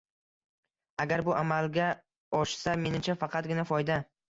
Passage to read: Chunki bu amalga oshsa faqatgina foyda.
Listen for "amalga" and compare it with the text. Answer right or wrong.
right